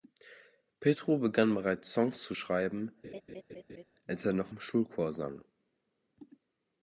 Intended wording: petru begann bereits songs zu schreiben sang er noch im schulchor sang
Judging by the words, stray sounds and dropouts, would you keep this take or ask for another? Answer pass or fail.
fail